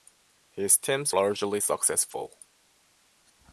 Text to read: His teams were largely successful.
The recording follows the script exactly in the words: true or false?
false